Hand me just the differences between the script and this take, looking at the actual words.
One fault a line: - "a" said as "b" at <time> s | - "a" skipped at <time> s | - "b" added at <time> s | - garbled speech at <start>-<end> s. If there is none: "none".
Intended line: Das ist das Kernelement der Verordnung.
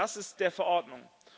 - "das Kernelement" skipped at 0.4 s